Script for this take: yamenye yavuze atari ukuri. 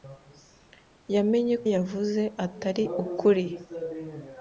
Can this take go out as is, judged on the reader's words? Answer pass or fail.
pass